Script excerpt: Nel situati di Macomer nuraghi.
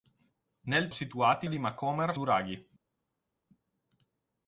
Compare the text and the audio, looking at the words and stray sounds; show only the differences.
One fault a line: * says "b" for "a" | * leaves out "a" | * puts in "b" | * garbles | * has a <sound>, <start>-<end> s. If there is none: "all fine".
all fine